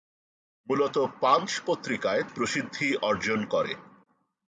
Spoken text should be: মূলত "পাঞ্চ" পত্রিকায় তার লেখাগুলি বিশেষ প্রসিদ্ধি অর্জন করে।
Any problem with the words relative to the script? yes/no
yes